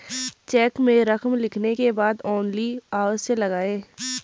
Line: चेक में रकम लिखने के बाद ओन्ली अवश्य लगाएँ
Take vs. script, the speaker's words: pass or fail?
pass